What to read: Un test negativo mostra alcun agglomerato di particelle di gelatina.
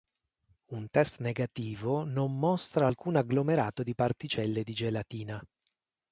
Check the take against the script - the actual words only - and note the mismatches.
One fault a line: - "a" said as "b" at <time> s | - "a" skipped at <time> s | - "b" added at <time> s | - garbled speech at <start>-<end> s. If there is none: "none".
- "non" added at 2.0 s